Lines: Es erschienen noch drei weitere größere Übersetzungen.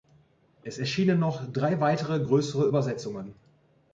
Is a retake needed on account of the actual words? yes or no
no